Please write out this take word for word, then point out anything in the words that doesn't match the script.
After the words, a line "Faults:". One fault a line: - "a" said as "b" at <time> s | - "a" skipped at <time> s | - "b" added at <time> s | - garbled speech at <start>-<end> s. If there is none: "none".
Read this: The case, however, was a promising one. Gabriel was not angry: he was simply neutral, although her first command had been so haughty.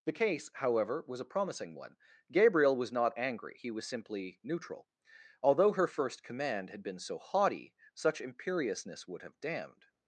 The case, however, was a promising one. Gabriel was not angry: he was simply neutral, although her first command had been so haughty. Such imperiousness would have damned
Faults:
- "Such imperiousness would have damned" added at 7.9 s